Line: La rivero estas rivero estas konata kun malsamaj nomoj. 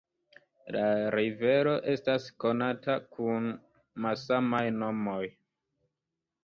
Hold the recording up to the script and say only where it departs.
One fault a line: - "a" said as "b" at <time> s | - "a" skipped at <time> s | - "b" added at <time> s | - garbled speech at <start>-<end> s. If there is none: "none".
- "rivero estas" skipped at 2.3 s